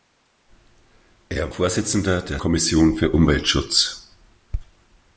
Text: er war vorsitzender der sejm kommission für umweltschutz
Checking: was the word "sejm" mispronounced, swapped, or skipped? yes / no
yes